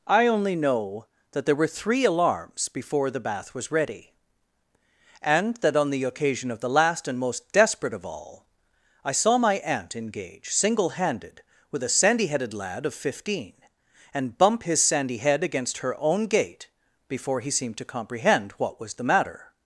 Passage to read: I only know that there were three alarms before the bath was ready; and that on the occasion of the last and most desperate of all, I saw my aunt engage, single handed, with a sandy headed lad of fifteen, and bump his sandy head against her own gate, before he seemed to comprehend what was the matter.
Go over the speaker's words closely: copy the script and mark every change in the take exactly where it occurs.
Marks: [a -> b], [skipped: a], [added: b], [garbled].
I only know that there were three alarms before the bath was ready; and that on the occasion of the last and most desperate of all, I saw my aunt engage, single handed, with a sandy headed lad of fifteen, and bump his sandy head against her own gate, before he seemed to comprehend what was the matter.